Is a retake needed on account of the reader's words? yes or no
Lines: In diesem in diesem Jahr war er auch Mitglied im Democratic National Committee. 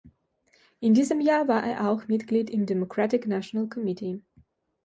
yes